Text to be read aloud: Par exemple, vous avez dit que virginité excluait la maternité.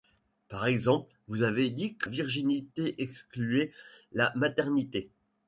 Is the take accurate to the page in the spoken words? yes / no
yes